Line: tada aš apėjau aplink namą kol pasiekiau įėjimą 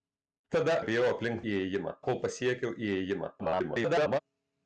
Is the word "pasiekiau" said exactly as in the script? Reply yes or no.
yes